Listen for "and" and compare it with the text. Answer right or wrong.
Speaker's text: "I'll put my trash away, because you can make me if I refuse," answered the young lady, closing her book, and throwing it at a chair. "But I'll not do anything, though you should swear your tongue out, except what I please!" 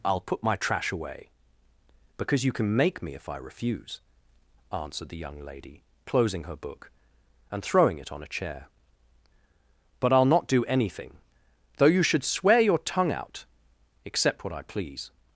right